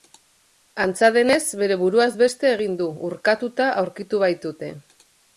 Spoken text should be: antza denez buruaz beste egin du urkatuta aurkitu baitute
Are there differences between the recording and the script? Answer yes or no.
yes